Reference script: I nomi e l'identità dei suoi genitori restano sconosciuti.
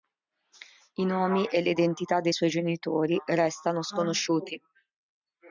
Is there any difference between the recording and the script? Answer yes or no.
no